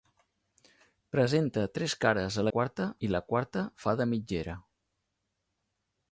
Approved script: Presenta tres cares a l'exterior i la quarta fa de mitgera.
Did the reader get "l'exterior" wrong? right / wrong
wrong